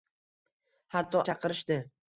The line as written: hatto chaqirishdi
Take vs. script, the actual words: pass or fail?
pass